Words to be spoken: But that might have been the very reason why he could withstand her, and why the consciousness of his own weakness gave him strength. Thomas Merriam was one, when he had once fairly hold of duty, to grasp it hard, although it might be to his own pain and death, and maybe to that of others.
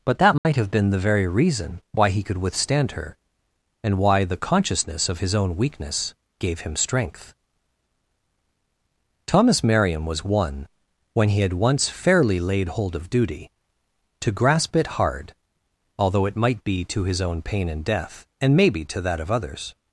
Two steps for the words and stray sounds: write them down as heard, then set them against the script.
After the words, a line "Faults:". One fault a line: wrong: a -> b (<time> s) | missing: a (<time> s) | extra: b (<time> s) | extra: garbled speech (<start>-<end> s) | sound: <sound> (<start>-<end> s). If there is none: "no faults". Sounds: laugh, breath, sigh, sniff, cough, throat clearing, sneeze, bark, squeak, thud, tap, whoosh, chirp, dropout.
But that might have been the very reason why he could withstand her, and why the consciousness of his own weakness gave him strength. Thomas Merriam was one, when he had once fairly laid hold of duty, to grasp it hard, although it might be to his own pain and death, and maybe to that of others.
Faults:
sound: dropout (0.4-0.5 s)
extra: laid (12.4 s)